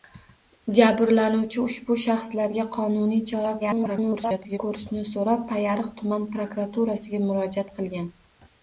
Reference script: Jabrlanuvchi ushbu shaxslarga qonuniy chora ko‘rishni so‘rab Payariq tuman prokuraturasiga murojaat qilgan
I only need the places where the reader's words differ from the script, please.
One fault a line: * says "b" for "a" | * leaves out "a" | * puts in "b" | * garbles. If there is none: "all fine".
* garbles